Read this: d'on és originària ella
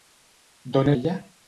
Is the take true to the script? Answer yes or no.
no